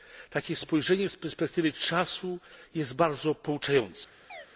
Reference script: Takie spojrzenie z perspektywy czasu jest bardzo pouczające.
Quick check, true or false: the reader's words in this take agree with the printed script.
true